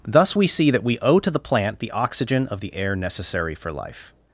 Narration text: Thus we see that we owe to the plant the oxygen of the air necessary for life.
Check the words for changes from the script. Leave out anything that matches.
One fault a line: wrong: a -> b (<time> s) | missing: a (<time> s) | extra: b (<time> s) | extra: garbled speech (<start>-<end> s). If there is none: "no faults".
no faults